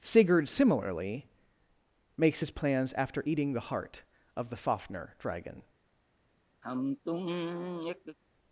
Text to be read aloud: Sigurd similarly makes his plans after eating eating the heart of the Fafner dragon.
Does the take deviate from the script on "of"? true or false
false